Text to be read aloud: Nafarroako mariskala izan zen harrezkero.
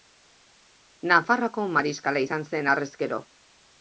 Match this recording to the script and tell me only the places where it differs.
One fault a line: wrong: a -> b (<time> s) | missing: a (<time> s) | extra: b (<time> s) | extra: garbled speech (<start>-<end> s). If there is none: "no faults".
no faults